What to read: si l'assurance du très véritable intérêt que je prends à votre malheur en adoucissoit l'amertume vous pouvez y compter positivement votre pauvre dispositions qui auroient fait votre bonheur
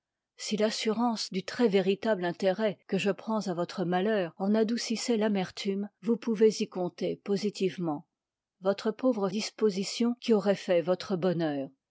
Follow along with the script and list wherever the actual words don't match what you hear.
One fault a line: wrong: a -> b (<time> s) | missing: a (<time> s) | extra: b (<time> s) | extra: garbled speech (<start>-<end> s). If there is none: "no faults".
no faults